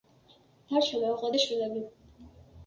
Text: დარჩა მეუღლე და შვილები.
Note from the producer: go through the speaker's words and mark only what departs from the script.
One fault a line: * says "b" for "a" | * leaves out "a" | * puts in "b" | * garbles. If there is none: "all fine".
all fine